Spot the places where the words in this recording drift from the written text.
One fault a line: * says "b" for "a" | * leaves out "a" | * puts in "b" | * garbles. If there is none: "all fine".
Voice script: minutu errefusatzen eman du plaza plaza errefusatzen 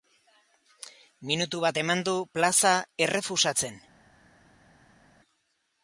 * says "bat" for "errefusatzen"
* leaves out "plaza"